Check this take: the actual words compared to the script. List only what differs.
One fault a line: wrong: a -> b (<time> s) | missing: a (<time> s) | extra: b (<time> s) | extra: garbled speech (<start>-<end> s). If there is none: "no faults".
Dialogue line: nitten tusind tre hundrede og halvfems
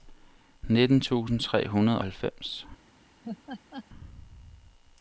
missing: og (2.0 s)